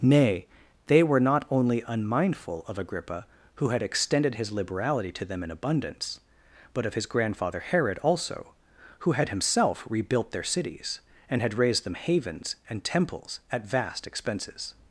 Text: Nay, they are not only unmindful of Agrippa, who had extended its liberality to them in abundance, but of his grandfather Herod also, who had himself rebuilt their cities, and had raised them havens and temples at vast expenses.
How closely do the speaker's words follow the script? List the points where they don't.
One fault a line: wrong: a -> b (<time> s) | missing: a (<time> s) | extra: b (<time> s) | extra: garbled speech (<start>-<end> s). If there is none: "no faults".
wrong: are -> were (1.0 s)
wrong: its -> his (4.3 s)